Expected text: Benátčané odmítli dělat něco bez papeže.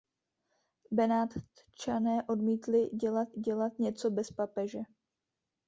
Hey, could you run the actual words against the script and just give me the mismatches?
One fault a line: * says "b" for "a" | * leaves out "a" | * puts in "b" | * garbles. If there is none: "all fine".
* puts in "dělat"